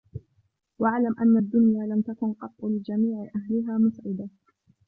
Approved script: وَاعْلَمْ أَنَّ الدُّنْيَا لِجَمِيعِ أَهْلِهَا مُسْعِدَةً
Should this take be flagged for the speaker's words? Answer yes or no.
yes